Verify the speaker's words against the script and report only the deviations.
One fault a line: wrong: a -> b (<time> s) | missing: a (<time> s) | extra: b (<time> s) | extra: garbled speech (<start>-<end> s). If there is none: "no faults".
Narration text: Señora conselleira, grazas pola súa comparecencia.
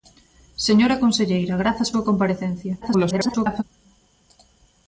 missing: pola (1.9 s)
extra: garbled speech (2.8-3.6 s)